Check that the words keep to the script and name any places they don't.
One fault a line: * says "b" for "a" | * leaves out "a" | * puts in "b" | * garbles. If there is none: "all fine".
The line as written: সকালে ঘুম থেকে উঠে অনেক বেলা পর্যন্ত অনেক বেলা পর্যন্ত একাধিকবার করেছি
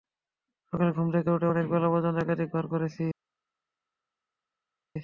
* leaves out "অনেক বেলা পর্যন্ত"